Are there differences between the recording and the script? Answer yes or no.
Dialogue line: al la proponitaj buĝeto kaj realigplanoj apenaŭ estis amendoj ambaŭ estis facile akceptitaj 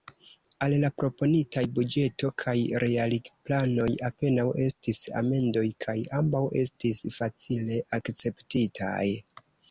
yes